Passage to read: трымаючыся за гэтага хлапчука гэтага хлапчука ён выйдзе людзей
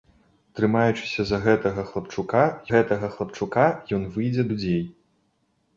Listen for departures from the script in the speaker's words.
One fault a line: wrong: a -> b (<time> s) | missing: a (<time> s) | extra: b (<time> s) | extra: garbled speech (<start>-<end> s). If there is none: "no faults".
no faults